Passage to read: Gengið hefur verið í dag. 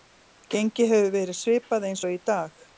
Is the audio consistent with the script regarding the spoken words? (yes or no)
no